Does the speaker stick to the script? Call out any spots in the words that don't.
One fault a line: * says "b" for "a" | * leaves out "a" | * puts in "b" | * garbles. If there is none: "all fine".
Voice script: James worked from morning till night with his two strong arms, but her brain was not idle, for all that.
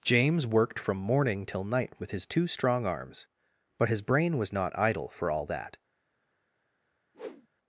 * says "his" for "her"